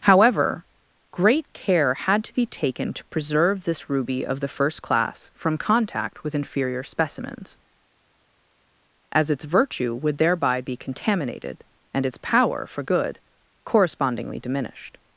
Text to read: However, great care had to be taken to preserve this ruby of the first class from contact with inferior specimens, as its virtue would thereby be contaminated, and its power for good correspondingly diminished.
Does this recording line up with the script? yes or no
yes